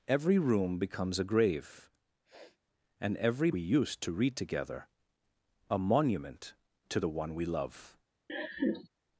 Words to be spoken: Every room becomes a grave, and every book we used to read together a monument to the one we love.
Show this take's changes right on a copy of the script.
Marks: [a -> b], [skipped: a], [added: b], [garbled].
Every room becomes a grave, and every [skipped: book] we used to read together a monument to the one we love.